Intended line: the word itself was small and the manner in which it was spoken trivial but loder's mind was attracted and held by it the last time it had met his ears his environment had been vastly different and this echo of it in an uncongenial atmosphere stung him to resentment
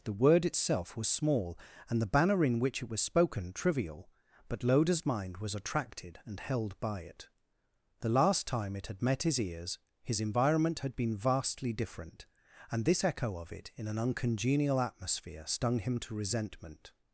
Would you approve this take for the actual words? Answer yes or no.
no